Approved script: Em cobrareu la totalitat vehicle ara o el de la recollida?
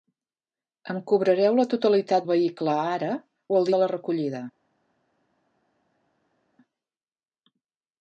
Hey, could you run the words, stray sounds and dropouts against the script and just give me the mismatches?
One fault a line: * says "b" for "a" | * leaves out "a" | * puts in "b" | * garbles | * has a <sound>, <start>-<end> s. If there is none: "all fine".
all fine